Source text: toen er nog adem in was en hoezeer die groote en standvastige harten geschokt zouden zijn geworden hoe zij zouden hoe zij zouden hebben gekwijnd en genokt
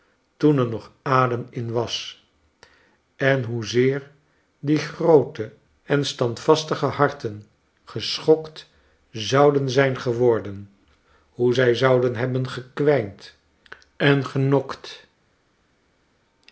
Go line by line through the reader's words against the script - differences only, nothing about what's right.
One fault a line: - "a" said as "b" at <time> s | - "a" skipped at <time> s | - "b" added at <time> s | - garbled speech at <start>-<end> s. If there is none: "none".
- "hoe zij zouden" skipped at 12.2 s